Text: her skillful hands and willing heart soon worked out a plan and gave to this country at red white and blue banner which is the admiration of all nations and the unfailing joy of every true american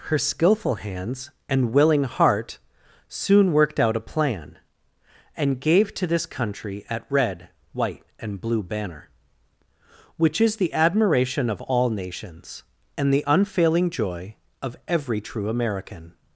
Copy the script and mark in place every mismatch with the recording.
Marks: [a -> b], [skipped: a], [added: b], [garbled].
her skillful hands and willing heart soon worked out a plan and gave to this country at red white and blue banner which is the admiration of all nations and the unfailing joy of every true american